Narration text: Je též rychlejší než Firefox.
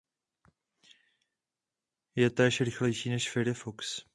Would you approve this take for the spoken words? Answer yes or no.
yes